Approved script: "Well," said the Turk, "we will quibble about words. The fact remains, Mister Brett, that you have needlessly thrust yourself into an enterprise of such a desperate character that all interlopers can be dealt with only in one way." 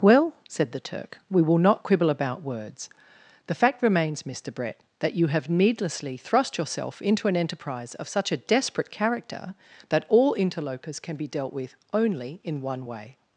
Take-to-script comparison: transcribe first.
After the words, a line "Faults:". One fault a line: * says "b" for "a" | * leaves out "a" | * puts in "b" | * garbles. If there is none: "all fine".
"Well," said the Turk, "we will not quibble about words. The fact remains, Mister Brett, that you have needlessly thrust yourself into an enterprise of such a desperate character that all interlopers can be dealt with only in one way."
Faults:
* puts in "not"